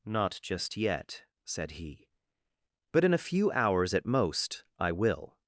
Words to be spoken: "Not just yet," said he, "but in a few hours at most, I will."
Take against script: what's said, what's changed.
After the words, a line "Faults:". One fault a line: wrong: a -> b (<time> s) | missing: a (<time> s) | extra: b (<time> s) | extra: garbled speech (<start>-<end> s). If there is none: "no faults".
"Not just yet," said he, "but in a few hours at most, I will."
Faults:
no faults